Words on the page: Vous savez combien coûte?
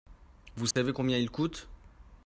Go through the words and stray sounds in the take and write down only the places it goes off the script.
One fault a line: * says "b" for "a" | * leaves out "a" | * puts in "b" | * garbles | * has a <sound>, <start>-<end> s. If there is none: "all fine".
* has a dropout, 0.7-0.8 s
* puts in "il"